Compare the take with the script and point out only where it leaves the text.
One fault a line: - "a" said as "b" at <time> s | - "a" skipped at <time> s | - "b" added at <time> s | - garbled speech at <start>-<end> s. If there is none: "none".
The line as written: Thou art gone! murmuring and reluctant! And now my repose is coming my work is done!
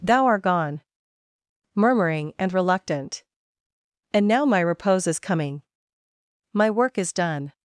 none